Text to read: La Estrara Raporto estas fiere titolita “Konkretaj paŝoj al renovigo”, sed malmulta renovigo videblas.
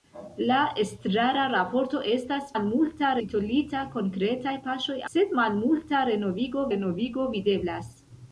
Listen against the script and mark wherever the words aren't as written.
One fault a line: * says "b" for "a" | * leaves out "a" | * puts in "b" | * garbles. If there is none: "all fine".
* says "malmulta" for "fiere"
* leaves out "al renovigo"
* puts in "renovigo"